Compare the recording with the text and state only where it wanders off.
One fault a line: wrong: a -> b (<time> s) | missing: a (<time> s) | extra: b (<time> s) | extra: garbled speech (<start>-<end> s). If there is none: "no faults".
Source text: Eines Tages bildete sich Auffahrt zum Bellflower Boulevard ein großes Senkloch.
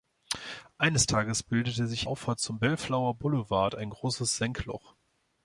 no faults